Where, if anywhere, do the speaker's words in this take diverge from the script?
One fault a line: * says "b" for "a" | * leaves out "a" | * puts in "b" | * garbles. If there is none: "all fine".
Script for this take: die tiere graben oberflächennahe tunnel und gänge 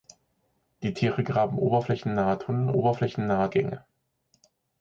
* says "oberflächennahe" for "und"